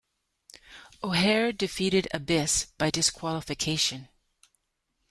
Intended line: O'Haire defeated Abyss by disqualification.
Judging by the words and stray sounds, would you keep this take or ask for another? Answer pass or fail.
pass